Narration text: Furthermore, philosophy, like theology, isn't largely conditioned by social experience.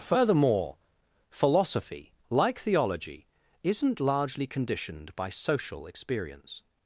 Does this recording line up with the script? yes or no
yes